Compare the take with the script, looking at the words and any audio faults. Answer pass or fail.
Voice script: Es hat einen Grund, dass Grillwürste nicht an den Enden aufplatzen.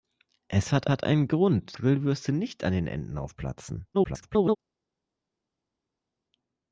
fail